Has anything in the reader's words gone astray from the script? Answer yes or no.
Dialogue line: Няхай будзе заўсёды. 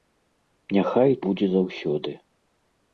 no